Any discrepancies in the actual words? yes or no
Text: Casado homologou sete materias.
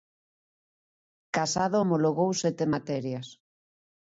no